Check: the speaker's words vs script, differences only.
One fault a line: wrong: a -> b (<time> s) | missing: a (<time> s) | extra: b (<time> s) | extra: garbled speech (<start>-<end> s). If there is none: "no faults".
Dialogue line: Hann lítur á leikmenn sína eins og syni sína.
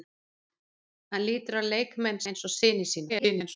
missing: sína (2.2 s)
extra: garbled speech (3.1-3.6 s)